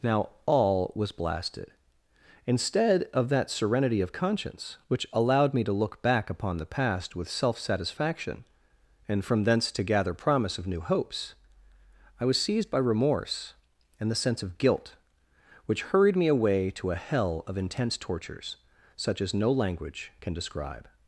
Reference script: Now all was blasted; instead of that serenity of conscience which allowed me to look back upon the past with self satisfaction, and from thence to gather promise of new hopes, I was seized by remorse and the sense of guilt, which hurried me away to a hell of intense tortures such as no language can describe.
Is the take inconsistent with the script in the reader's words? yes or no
no